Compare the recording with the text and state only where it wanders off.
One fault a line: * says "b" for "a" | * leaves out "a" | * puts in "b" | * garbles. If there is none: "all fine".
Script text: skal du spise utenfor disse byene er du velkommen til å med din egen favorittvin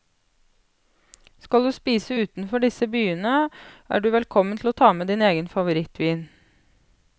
* puts in "ta"